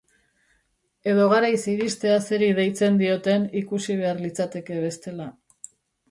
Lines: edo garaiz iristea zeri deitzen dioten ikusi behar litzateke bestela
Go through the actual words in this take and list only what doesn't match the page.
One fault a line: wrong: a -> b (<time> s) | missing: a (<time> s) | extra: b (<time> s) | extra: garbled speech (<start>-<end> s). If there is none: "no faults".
no faults